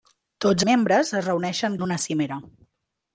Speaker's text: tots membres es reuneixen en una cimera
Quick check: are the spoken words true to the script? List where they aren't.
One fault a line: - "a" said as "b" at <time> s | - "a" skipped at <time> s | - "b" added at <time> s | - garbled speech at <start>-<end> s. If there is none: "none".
none